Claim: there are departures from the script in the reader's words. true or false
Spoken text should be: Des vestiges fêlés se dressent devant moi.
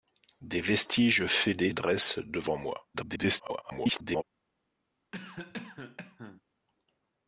true